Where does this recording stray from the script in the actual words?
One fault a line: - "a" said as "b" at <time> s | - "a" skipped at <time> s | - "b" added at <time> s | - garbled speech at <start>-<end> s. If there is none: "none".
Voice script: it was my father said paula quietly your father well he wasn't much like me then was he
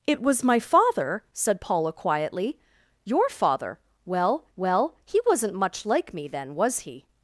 - "well" added at 4.6 s